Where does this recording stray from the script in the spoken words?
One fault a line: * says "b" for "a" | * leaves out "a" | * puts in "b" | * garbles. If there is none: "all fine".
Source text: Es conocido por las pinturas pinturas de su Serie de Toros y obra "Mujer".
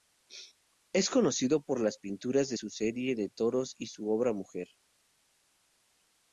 * leaves out "pinturas"
* puts in "su"